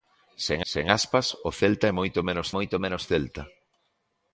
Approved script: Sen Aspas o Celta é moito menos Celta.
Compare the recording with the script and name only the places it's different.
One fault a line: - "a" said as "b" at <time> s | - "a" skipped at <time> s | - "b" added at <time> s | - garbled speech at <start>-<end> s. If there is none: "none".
- "sen" added at 0.7 s
- "moito menos" added at 2.6 s